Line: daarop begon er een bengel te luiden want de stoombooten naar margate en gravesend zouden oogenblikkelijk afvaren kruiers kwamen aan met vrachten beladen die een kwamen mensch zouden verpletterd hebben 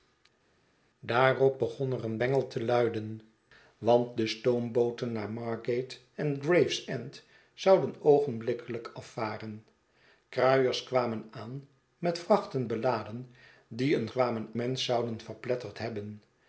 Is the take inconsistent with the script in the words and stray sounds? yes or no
no